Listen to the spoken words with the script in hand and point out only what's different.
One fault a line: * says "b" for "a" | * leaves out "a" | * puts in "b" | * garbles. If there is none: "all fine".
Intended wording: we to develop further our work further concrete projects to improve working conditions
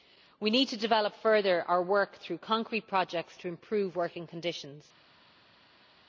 * puts in "need"
* says "through" for "further"